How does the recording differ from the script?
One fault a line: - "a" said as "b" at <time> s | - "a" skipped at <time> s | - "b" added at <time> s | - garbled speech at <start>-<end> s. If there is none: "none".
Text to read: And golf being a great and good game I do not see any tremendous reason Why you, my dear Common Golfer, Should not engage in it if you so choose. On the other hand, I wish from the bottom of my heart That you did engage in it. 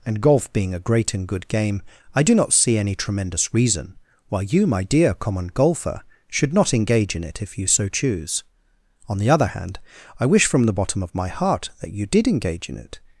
none